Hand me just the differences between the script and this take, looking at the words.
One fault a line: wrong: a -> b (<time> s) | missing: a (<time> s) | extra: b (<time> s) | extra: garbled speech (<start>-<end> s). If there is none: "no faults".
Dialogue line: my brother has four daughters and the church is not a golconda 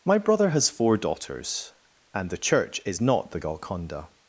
wrong: a -> the (3.3 s)